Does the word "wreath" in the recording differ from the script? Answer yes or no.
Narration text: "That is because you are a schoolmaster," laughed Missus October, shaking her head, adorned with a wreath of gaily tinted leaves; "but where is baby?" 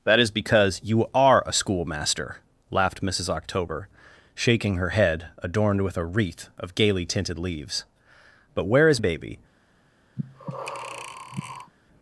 no